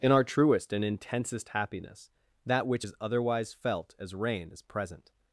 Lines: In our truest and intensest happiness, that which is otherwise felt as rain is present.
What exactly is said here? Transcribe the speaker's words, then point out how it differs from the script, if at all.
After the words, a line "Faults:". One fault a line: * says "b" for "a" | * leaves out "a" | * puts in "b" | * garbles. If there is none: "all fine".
In our truest and intensest happiness, that which is otherwise felt as rain is present.
Faults:
all fine